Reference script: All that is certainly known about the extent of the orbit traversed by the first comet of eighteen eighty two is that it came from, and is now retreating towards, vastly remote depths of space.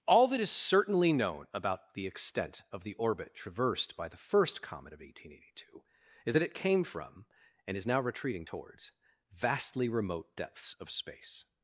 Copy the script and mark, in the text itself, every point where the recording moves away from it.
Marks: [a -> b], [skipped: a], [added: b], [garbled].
All that is certainly known about the extent of the orbit traversed by the first comet of eighteen eighty two is that it came from, and is now retreating towards, vastly remote depths of space.